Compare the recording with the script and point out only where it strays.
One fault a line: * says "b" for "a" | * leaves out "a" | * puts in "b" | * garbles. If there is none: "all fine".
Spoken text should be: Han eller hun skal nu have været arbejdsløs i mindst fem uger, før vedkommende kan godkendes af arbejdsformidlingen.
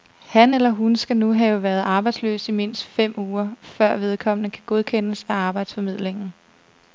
all fine